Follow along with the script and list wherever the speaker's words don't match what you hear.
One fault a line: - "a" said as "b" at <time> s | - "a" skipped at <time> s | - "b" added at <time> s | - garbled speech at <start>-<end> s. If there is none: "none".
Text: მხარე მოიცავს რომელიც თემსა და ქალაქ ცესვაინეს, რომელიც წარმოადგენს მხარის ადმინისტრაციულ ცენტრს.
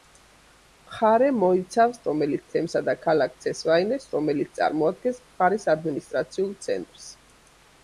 none